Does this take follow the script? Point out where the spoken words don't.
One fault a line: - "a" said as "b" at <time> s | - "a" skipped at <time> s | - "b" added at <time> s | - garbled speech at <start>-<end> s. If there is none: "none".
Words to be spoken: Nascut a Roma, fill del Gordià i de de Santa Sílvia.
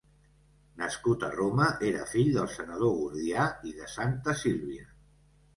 - "era" added at 1.9 s
- "senador" added at 2.5 s
- "de" skipped at 3.9 s